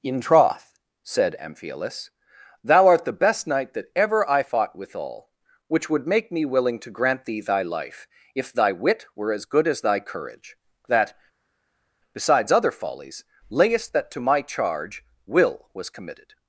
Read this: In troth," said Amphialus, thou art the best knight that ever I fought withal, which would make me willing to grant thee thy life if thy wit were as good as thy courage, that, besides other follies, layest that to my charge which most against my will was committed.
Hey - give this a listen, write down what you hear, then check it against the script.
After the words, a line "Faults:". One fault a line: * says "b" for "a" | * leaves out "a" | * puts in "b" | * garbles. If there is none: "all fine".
In troth," said Amphialus, thou art the best knight that ever I fought withal, which would make me willing to grant thee thy life if thy wit were as good as thy courage, that, besides other follies, layest that to my charge will was committed.
Faults:
* leaves out "which most against my"